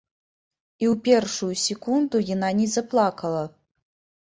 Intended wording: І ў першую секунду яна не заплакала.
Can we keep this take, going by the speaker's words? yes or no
yes